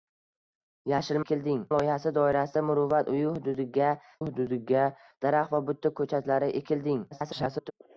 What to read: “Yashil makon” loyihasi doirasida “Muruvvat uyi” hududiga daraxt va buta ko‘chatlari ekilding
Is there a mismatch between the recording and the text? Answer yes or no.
yes